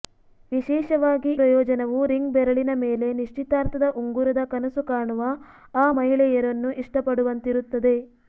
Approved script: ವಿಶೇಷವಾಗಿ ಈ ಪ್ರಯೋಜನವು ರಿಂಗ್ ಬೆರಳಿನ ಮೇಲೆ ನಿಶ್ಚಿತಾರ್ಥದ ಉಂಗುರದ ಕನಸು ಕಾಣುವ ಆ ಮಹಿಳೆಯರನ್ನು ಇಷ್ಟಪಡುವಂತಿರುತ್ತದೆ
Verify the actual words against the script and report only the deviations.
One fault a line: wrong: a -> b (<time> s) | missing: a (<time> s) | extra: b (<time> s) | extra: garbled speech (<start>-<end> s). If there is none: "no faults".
missing: ಈ (1.3 s)